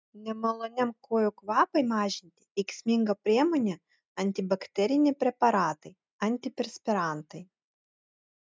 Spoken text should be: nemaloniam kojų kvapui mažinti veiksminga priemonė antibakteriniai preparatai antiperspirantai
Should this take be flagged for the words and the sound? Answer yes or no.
no